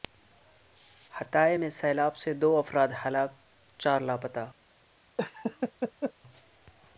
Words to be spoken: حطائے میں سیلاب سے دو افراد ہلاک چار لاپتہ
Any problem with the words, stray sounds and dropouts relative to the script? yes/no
yes